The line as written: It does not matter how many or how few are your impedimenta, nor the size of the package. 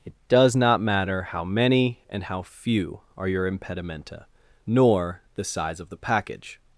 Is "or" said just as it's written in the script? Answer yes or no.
no